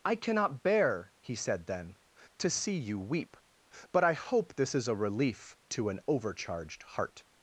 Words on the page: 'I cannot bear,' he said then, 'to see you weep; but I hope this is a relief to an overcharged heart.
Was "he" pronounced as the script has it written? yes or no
yes